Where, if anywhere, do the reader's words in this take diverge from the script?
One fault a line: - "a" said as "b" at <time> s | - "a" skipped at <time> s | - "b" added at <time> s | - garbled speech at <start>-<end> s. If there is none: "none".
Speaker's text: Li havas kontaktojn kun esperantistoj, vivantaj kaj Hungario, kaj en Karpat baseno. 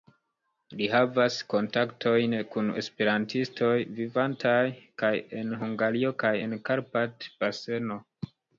- "en" added at 5.4 s